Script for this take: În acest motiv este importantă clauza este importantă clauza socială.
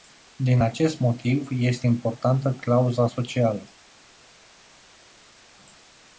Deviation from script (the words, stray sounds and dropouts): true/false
true